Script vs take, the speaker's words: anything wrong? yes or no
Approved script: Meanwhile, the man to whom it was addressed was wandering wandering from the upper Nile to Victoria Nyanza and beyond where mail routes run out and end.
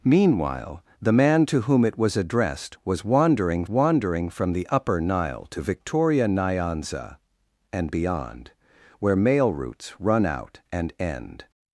no